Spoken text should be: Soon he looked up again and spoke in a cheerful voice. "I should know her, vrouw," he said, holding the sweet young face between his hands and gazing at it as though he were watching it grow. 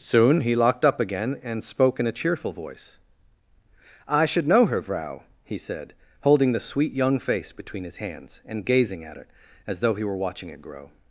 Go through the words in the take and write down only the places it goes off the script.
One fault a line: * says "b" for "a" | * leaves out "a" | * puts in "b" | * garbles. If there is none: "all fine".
* says "locked" for "looked"